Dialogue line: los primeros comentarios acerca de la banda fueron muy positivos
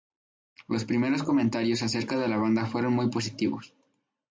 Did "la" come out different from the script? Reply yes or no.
no